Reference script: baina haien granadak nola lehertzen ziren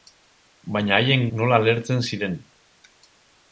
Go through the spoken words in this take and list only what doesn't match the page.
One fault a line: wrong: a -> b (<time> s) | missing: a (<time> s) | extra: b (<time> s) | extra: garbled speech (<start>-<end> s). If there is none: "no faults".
missing: granadak (1.3 s)